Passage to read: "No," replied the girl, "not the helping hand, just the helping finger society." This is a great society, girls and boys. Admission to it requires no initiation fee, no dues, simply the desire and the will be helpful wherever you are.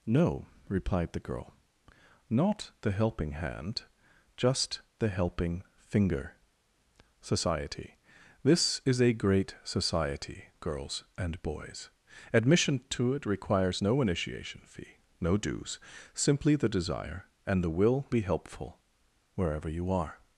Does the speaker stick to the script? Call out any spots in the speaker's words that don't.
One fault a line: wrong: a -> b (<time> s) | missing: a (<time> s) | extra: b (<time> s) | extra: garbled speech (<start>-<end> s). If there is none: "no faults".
no faults